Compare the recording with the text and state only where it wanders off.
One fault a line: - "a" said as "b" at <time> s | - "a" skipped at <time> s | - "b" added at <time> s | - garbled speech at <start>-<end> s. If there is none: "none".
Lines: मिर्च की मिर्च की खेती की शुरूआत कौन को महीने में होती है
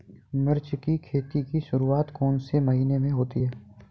- "मिर्च की" skipped at 1.0 s
- "को" said as "से" at 2.4 s